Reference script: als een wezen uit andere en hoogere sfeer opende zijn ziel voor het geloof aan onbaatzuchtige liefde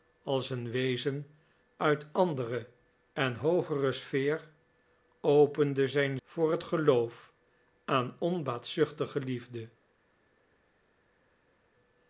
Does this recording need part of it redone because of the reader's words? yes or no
yes